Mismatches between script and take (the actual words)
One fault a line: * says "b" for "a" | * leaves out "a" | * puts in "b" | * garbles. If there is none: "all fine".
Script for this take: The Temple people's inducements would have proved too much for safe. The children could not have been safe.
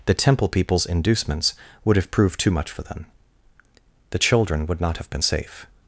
* says "them" for "safe"
* says "would" for "could"